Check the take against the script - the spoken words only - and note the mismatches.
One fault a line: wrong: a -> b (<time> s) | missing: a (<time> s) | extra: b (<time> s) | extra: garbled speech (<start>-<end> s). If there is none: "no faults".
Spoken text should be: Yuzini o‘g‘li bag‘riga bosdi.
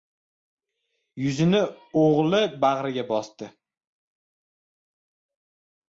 no faults